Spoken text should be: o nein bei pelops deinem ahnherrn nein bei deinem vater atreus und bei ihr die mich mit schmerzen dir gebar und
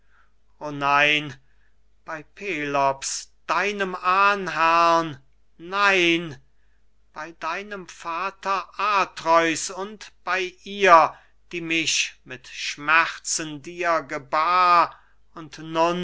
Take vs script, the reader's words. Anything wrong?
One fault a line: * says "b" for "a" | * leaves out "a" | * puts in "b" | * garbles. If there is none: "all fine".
all fine